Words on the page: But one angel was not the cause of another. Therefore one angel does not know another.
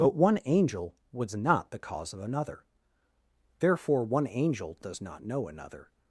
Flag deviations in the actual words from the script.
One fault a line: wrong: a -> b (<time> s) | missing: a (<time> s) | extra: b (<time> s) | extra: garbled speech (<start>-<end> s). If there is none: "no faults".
no faults